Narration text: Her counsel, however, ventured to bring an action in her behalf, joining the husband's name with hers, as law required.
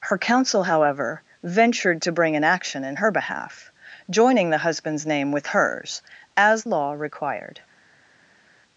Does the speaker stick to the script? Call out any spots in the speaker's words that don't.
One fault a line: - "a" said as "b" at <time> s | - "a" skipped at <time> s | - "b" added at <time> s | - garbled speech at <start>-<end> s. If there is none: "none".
none